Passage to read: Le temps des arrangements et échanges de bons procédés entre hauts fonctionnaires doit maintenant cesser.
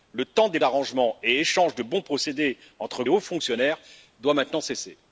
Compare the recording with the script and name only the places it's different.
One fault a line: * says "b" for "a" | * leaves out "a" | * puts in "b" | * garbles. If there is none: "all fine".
all fine